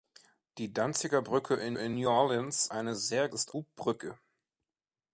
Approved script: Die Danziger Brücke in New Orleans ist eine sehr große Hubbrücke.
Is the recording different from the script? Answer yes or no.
yes